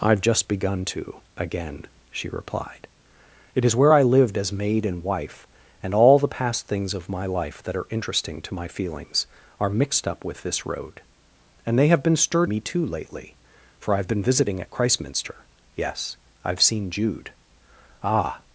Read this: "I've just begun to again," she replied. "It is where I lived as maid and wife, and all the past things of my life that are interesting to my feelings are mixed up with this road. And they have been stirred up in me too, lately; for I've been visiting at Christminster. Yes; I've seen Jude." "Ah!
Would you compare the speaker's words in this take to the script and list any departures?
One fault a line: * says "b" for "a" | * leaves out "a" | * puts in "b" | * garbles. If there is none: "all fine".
* leaves out "up in"